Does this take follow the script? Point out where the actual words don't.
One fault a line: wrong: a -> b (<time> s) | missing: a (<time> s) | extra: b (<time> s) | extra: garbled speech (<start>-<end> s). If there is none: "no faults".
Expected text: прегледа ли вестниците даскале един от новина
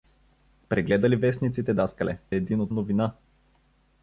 no faults